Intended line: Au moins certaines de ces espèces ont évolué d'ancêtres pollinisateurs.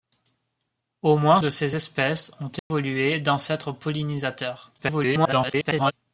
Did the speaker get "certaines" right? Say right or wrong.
wrong